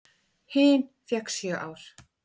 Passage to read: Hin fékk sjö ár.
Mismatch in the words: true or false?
false